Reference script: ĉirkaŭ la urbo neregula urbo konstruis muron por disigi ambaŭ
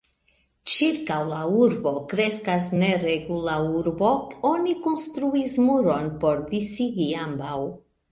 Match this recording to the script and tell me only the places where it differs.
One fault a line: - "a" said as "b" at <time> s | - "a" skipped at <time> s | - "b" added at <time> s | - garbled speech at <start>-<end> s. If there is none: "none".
- "kreskas" added at 2.1 s
- "oni" added at 4.5 s